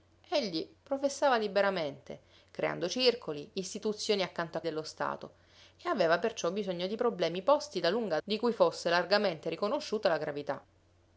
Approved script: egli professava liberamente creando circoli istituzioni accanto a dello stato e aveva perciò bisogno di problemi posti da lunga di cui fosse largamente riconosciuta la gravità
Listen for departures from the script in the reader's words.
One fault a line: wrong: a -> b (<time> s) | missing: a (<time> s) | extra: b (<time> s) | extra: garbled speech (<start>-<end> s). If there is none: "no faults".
no faults